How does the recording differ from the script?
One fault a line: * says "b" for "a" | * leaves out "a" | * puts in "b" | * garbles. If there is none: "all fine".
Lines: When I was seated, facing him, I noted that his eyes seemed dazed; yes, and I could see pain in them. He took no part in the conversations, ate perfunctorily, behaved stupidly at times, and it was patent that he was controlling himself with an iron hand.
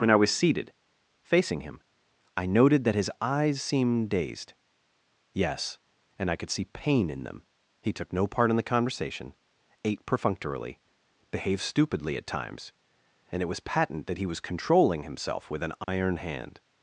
* says "conversation" for "conversations"